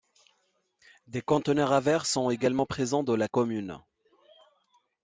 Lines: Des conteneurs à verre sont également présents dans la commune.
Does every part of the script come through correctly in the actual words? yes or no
yes